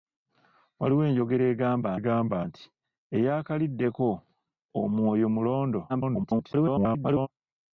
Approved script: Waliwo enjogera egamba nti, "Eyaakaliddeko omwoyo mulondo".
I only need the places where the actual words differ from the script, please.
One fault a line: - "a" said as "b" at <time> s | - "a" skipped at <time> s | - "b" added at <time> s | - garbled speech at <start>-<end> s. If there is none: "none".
- "egamba" added at 2.0 s
- garbled speech at 5.9-7.3 s